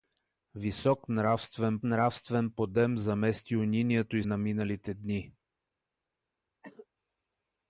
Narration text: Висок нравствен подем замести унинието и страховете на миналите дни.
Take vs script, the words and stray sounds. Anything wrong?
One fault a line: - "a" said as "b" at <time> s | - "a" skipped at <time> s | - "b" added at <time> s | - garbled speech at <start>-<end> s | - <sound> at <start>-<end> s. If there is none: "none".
- "нравствен" added at 1.8 s
- "страховете" skipped at 4.2 s
- cough at 6.6-6.9 s